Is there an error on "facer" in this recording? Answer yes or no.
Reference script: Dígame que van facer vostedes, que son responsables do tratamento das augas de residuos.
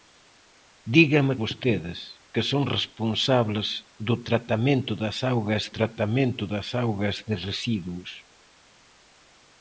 yes